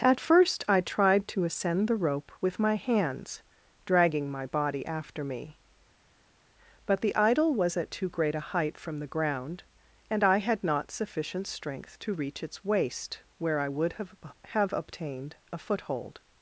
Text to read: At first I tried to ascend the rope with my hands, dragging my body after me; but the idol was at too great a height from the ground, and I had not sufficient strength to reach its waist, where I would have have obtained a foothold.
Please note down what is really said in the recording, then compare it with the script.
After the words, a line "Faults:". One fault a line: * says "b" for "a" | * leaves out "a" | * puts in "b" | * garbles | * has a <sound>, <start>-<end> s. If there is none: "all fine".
At first I tried to ascend the rope with my hands, dragging my body after me; but the idol was at too great a height from the ground, and I had not sufficient strength to reach its waist, where I would have have obtained a foothold.
Faults:
all fine